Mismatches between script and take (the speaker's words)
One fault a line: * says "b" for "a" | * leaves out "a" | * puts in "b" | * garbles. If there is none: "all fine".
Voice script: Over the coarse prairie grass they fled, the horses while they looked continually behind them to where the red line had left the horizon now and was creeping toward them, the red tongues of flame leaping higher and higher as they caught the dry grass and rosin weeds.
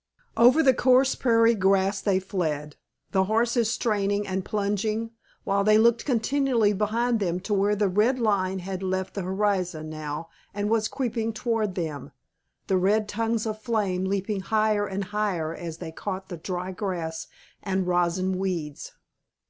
* puts in "straining and plunging"